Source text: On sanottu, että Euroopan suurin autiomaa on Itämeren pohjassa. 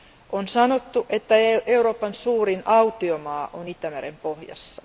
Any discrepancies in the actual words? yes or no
no